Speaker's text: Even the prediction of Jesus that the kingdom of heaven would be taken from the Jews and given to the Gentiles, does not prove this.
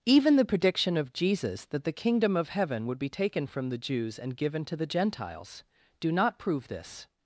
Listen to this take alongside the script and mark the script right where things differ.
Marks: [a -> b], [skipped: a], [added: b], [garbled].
Even the prediction of Jesus that the kingdom of heaven would be taken from the Jews and given to the Gentiles, [does -> do] not prove this.